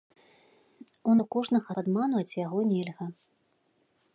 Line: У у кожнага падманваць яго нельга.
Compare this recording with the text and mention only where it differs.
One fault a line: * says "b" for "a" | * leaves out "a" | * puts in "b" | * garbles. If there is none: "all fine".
all fine